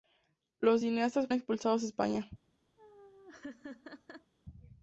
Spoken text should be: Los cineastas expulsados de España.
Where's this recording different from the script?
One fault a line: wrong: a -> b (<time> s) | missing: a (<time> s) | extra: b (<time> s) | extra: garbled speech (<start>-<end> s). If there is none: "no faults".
no faults